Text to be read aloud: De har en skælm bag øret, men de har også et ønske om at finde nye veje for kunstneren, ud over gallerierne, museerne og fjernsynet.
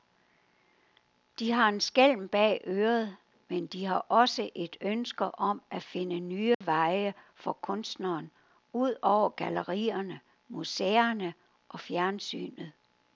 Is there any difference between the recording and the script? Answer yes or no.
no